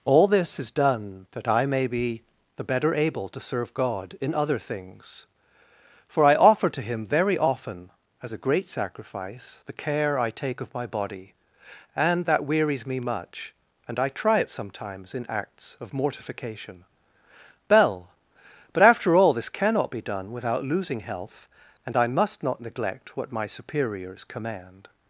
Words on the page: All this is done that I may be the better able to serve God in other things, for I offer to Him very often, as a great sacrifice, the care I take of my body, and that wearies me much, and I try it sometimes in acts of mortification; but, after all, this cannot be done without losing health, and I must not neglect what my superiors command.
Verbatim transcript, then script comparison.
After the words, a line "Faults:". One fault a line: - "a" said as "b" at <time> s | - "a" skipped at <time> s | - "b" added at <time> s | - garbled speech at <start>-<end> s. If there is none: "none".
All this is done that I may be the better able to serve God in other things, for I offer to Him very often, as a great sacrifice, the care I take of my body, and that wearies me much, and I try it sometimes in acts of mortification; bell but, after all, this cannot be done without losing health, and I must not neglect what my superiors command.
Faults:
- "bell" added at 17.7 s